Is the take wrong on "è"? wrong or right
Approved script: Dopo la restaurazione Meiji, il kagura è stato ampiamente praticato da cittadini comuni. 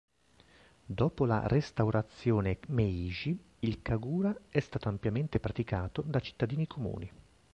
right